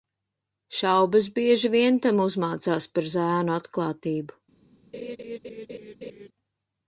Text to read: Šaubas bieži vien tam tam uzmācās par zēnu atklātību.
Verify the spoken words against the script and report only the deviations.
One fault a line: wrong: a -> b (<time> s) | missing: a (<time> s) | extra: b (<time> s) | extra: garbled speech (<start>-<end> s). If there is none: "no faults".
missing: tam (2.2 s)